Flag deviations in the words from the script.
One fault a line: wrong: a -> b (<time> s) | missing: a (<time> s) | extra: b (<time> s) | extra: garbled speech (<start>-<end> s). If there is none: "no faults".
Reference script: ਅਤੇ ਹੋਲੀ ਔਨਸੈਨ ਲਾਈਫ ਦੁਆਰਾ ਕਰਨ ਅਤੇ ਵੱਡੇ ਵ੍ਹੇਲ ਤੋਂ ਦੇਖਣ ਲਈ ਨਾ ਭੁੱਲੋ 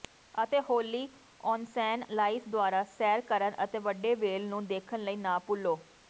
extra: ਸੈਰ (2.9 s)
wrong: ਤੋਂ -> ਨੂੰ (4.5 s)